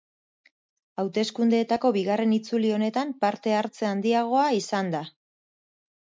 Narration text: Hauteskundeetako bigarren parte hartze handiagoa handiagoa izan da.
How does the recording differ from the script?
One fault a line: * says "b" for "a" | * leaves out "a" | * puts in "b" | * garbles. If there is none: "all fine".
* puts in "itzuli honetan"
* leaves out "handiagoa"